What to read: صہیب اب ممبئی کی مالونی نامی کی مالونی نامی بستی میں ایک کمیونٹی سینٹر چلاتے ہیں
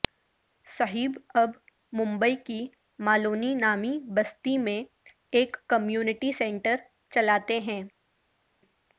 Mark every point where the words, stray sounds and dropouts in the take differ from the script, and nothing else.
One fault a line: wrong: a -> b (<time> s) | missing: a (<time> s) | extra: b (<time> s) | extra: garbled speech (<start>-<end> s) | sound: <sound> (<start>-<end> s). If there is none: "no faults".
missing: کی مالونی نامی (3.9 s)